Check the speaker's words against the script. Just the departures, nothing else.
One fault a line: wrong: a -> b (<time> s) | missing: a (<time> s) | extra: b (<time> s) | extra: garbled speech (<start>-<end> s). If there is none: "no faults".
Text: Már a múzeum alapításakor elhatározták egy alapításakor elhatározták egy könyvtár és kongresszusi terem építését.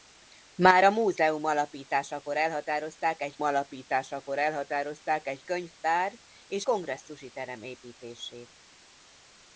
no faults